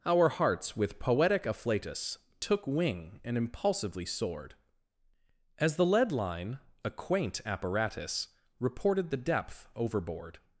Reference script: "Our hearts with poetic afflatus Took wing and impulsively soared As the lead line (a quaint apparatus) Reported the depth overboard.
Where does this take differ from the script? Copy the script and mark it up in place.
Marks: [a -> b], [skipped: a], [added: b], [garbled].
"Our hearts with poetic afflatus Took wing and impulsively soared As the lead line (a quaint apparatus) Reported the depth overboard.